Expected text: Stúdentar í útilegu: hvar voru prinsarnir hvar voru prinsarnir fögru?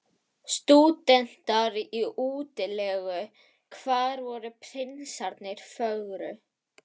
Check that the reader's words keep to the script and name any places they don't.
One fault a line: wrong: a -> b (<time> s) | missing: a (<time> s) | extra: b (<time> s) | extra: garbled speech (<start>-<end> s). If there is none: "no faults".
missing: hvar voru prinsarnir (5.7 s)